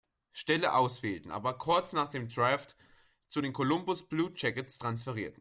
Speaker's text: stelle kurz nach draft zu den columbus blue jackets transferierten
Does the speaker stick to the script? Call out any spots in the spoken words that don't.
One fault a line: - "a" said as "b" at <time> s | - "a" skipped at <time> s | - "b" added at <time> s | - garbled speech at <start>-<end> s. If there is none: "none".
- "auswählten aber" added at 0.7 s
- "dem" added at 2.1 s